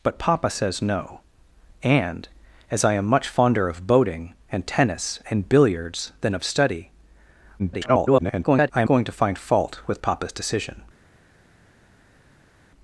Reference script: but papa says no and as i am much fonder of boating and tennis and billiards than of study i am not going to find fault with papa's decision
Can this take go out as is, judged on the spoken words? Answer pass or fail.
fail